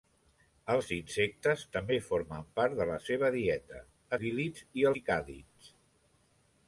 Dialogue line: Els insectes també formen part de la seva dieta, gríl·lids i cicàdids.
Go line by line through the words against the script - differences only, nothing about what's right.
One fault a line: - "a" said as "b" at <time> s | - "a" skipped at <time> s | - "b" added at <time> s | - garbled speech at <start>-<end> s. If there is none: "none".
none